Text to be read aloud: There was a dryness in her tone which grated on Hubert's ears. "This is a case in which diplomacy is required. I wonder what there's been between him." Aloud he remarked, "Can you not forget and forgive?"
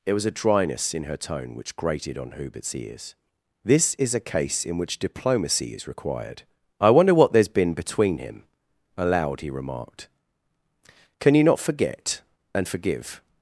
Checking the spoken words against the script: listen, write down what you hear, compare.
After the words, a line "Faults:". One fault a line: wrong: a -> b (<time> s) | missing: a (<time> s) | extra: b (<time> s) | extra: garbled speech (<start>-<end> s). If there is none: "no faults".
There was a dryness in her tone which grated on Hubert's ears. "This is a case in which diplomacy is required. I wonder what there's been between him." Aloud he remarked, "Can you not forget and forgive?"
Faults:
no faults